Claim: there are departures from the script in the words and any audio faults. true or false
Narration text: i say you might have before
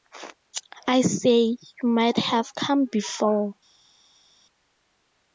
true